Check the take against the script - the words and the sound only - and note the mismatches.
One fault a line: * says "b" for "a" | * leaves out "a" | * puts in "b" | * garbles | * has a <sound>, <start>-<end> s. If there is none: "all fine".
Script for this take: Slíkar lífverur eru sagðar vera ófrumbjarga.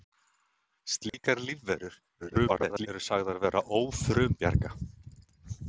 * has a dropout, 1.1-1.1 s
* garbles